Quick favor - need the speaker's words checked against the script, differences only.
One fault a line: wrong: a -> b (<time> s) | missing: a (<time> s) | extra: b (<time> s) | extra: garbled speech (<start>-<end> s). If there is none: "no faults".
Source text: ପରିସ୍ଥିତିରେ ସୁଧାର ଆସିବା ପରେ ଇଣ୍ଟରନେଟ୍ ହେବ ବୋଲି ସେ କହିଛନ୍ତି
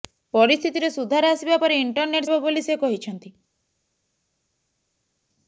no faults